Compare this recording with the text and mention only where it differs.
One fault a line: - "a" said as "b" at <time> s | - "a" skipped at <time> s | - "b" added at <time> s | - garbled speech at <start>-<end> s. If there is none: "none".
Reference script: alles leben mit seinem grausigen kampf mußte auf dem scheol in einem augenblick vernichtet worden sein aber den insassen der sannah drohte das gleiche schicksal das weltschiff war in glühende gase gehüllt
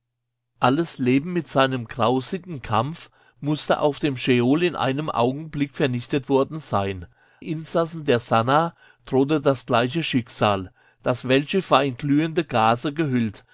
- "aber den" skipped at 7.0 s